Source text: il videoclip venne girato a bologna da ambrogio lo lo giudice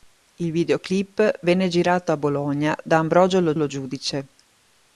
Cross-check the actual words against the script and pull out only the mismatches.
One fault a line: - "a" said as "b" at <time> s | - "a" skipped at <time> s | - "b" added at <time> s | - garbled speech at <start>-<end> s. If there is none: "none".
none